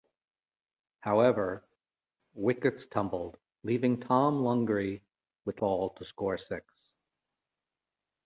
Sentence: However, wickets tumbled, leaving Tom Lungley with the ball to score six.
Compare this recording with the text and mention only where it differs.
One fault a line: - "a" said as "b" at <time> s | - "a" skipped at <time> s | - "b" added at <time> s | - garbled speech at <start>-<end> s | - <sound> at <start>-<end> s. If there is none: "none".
none